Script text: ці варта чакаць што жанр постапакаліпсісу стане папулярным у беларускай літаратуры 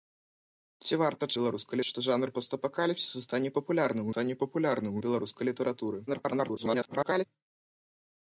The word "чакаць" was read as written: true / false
false